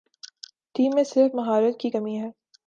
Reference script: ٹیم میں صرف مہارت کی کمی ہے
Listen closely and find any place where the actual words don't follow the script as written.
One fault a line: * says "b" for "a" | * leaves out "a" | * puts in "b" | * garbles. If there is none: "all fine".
all fine